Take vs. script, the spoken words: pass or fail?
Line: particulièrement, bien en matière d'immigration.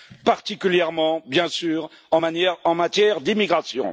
fail